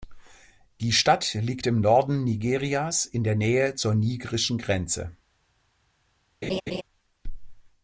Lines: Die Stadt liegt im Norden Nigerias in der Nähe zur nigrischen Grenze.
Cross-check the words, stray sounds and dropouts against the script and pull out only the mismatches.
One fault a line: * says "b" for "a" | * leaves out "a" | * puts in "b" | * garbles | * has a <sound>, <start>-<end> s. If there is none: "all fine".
* has a laugh, 6.4-6.8 s